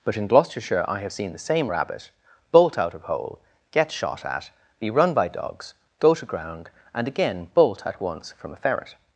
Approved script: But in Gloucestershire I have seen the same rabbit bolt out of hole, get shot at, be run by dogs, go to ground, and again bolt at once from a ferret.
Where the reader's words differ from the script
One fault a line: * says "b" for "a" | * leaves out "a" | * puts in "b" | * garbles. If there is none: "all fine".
all fine